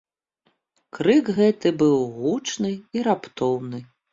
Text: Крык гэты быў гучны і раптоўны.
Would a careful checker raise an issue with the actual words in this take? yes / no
no